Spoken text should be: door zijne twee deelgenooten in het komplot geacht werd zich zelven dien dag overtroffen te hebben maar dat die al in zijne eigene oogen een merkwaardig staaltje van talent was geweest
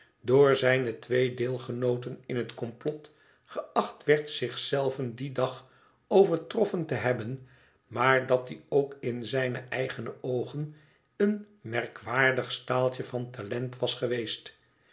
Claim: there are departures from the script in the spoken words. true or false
true